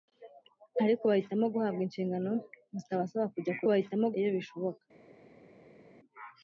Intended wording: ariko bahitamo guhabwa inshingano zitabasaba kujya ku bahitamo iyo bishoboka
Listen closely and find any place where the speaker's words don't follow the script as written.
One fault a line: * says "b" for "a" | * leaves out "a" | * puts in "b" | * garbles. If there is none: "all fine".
all fine